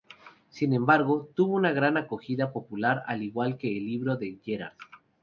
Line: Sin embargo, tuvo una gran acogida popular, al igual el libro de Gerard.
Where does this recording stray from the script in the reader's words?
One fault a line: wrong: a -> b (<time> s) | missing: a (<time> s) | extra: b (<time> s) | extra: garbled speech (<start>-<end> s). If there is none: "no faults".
extra: que (3.6 s)